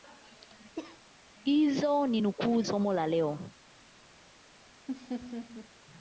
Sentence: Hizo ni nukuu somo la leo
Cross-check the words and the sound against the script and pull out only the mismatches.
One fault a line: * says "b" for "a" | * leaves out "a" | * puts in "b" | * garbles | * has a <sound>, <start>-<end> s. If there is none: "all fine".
* has a cough, 0.8-1.0 s
* has a laugh, 4.9-5.7 s